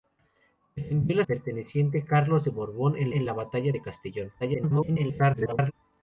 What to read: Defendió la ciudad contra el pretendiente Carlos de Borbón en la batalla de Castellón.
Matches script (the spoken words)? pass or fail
fail